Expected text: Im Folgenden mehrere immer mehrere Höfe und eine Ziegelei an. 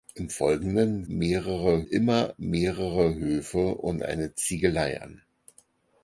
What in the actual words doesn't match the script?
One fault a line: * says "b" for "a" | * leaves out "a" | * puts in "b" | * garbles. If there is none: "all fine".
all fine